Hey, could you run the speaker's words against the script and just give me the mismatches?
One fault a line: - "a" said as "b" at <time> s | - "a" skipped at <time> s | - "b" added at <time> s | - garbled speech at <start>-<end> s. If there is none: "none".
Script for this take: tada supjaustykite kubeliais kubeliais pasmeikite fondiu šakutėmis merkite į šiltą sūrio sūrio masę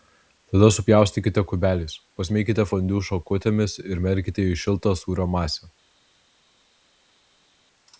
- "kubeliais" skipped at 2.0 s
- "ir" added at 3.8 s
- "sūrio" skipped at 5.3 s